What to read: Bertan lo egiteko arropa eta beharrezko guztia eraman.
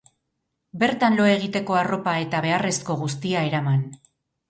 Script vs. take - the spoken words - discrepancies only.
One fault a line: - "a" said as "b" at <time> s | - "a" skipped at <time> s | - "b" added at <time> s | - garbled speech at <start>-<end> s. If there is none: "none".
none